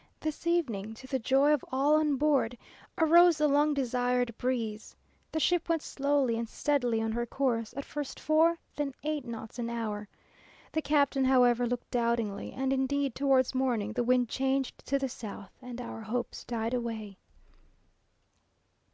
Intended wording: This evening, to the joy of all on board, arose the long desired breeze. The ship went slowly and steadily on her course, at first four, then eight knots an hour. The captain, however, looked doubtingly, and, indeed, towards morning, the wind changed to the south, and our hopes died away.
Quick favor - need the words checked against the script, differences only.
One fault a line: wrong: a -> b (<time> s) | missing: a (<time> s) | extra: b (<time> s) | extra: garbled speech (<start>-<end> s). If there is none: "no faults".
no faults